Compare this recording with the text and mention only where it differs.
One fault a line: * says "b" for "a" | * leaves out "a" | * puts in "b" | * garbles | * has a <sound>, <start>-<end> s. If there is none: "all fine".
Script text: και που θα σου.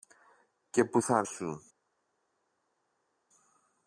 all fine